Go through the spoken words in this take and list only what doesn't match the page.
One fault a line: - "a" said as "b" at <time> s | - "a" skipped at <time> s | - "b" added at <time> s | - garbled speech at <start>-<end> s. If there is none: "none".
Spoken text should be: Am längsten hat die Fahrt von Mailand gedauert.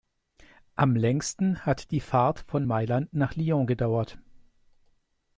- "nach Lyon" added at 3.1 s